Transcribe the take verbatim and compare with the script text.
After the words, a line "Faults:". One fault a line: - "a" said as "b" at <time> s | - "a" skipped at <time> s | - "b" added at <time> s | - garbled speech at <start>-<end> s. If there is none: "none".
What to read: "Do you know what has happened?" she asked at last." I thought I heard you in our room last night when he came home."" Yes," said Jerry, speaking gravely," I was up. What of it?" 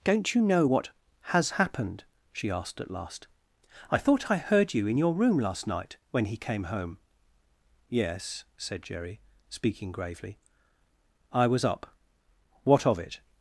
"Don't you know what has happened?" she asked at last." I thought I heard you in your room last night when he came home."" Yes," said Jerry, speaking gravely," I was up. What of it?"
Faults:
- "Do" said as "Don't" at 0.0 s
- "our" said as "your" at 5.0 s